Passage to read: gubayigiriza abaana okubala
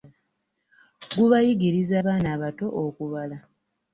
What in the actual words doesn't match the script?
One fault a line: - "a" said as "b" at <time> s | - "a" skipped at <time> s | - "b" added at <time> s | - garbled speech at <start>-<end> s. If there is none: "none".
- "abato" added at 2.4 s